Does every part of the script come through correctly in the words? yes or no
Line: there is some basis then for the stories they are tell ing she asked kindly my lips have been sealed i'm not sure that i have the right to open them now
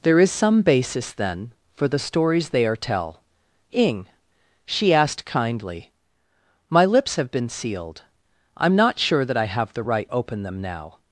no